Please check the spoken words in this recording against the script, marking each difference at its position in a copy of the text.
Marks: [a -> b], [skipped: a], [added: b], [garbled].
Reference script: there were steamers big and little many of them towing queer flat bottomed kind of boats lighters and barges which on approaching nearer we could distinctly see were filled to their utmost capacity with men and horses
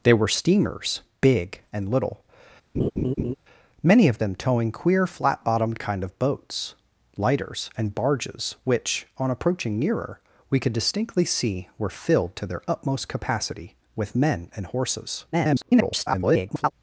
there were steamers big and little many of them towing queer flat bottomed kind of boats lighters and barges which on approaching nearer we could distinctly see were filled to their utmost capacity with men and horses [garbled]